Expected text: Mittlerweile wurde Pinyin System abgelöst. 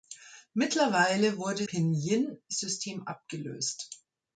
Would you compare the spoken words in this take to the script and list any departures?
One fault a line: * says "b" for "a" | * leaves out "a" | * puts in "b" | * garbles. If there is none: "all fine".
all fine